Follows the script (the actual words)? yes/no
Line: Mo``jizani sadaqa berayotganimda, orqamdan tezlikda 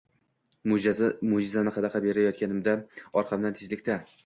yes